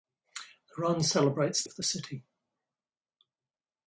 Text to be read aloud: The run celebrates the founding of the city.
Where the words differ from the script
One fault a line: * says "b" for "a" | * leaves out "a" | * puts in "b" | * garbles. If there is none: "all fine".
* leaves out "the founding"